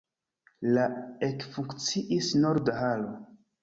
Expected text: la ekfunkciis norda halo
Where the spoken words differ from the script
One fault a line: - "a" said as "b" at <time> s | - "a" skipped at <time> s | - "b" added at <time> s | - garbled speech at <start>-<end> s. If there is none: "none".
none